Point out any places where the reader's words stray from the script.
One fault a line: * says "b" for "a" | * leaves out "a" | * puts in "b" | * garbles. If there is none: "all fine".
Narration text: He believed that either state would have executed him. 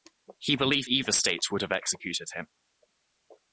* leaves out "that"